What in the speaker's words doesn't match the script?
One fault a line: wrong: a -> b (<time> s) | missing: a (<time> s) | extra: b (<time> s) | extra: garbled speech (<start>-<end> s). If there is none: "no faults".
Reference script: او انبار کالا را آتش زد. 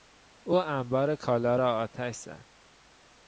no faults